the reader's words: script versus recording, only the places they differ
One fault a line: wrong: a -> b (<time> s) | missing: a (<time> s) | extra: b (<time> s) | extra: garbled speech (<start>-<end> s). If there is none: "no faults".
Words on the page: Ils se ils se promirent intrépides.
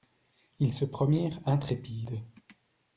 missing: ils se (0.9 s)